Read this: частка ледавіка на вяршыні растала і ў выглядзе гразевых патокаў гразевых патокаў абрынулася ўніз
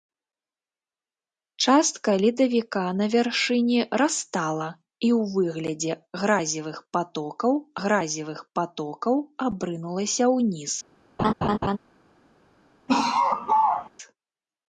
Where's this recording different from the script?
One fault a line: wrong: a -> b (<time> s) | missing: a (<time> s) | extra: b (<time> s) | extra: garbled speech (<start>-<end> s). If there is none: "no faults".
no faults